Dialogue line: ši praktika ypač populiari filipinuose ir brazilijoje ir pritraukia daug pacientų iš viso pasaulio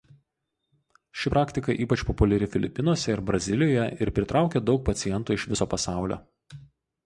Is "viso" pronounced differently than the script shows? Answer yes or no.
no